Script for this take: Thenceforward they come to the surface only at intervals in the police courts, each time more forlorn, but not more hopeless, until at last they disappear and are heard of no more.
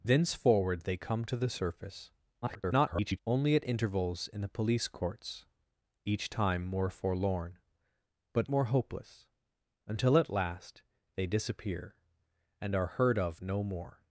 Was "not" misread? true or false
true